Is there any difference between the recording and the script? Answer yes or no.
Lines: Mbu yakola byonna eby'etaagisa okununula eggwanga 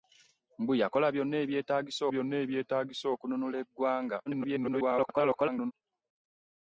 yes